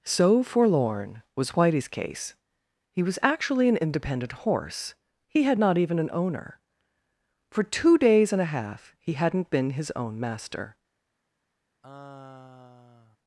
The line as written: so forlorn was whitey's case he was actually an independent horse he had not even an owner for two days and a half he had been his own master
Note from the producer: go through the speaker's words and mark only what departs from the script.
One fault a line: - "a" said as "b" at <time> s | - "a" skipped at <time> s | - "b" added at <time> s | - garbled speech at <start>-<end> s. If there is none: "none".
- "had" said as "hadn't" at 9.1 s